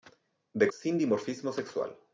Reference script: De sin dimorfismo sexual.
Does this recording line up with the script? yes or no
yes